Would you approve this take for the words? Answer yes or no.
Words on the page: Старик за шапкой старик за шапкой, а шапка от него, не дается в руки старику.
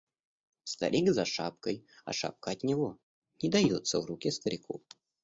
no